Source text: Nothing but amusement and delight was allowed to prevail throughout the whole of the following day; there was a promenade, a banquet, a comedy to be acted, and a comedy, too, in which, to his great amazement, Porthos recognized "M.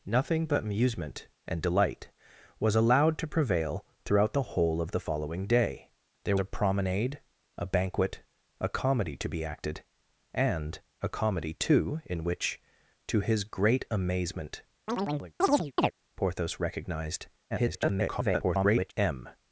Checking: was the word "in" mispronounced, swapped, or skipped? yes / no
no